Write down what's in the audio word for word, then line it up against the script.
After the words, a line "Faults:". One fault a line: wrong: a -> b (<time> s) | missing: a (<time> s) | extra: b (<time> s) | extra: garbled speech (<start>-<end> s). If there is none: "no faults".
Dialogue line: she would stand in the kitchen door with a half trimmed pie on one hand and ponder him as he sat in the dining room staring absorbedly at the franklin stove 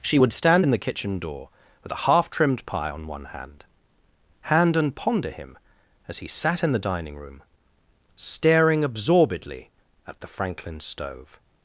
she would stand in the kitchen door with a half trimmed pie on one hand hand and ponder him as he sat in the dining room staring absorbedly at the franklin stove
Faults:
extra: hand (4.4 s)